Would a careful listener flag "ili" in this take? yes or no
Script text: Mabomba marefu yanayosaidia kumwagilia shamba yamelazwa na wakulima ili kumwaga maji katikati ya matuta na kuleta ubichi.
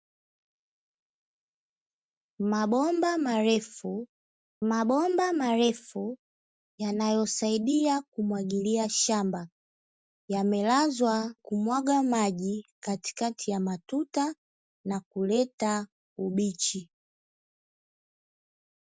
yes